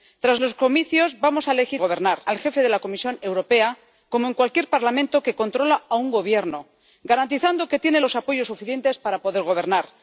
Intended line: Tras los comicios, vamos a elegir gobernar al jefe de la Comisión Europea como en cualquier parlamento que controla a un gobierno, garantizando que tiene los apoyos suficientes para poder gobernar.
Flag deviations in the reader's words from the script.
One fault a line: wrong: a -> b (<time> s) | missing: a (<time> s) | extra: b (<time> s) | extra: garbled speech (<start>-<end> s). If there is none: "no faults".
no faults